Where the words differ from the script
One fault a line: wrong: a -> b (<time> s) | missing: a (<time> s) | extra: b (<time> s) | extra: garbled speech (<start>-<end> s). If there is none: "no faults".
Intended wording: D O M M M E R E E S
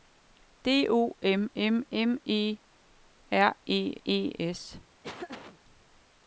no faults